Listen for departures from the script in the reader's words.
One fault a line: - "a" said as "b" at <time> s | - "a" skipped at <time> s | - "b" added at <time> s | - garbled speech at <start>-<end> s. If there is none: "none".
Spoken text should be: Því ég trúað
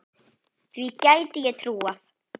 - "gæti" added at 1.1 s